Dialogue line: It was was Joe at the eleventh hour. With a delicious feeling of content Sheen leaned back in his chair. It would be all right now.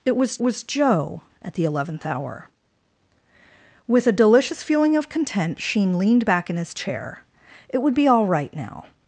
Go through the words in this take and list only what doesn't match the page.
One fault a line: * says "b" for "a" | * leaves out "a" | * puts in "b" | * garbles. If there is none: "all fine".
all fine